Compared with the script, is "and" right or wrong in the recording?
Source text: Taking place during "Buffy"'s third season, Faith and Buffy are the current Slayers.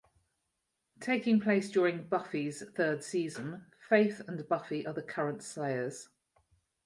right